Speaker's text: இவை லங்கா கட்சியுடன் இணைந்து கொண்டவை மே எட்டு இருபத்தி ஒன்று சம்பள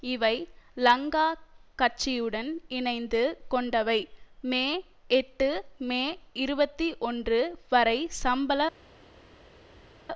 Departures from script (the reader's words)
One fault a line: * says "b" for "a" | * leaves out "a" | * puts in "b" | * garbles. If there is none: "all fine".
* puts in "மே"
* puts in "வரை"